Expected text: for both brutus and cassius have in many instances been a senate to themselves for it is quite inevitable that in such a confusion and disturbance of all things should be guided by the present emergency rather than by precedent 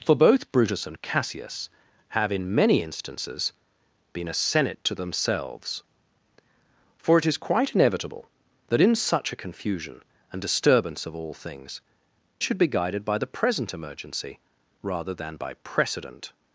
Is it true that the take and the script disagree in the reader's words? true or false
false